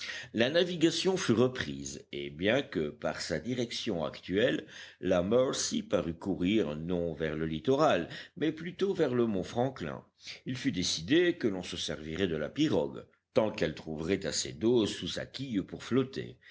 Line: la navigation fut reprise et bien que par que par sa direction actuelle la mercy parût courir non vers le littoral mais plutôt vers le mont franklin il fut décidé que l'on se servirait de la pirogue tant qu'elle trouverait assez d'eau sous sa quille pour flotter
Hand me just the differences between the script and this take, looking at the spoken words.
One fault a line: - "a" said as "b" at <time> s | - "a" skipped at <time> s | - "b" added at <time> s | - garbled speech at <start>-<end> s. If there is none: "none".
- "que par" skipped at 3.2 s